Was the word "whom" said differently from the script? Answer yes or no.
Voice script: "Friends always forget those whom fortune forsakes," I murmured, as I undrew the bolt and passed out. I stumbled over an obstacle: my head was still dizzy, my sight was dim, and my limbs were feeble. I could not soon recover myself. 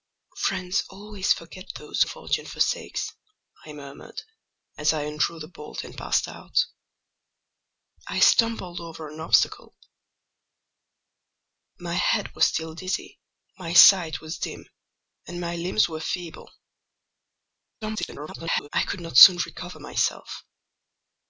yes